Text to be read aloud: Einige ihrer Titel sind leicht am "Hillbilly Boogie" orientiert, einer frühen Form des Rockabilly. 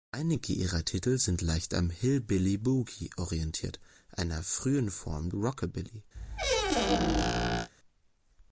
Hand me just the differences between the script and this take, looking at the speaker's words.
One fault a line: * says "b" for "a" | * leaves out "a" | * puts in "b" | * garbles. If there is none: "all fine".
* leaves out "des"